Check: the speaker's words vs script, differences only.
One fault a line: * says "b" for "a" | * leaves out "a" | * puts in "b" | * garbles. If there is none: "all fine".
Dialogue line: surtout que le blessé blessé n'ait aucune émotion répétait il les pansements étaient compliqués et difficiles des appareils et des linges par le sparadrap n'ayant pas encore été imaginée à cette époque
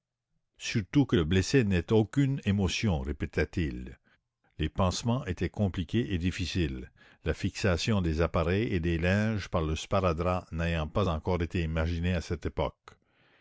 * leaves out "blessé"
* puts in "la fixation"